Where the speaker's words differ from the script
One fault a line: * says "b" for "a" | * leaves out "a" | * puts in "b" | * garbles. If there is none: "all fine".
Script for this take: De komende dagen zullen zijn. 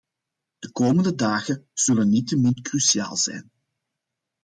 * puts in "niettemin cruciaal"